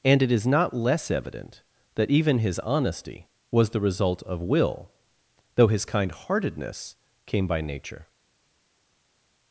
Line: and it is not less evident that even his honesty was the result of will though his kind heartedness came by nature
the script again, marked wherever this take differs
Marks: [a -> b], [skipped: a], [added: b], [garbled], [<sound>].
and it is not less evident that even his honesty was the result of will though his kind heartedness came by nature